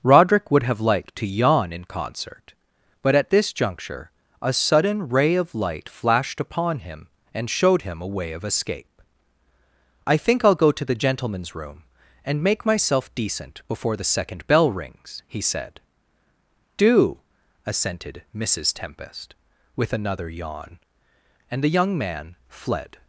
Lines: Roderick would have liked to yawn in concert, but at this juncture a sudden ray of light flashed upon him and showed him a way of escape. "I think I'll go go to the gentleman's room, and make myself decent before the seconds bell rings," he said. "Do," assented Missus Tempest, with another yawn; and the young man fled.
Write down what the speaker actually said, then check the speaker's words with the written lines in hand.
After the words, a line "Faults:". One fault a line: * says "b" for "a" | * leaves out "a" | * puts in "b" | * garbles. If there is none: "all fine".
Roderick would have liked to yawn in concert, but at this juncture a sudden ray of light flashed upon him and showed him a way of escape. "I think I'll go to the gentleman's room, and make myself decent before the second bell rings," he said. "Do," assented Missus Tempest, with another yawn; and the young man fled.
Faults:
* leaves out "go"
* says "second" for "seconds"